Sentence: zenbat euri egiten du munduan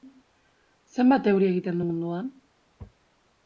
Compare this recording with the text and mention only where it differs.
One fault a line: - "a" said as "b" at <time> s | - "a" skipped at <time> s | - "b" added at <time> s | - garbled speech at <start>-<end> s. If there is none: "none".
none